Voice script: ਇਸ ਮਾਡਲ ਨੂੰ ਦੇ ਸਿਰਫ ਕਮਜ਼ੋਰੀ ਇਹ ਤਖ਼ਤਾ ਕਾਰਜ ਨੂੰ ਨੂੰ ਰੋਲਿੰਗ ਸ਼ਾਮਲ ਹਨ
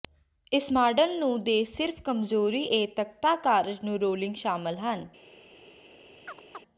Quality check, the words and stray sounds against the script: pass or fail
fail